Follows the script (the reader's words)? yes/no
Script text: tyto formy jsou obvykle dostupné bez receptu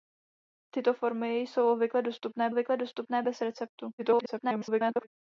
no